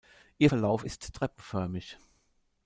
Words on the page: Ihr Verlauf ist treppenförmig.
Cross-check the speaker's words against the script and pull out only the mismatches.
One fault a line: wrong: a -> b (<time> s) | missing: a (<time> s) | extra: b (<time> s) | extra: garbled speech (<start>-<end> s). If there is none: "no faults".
no faults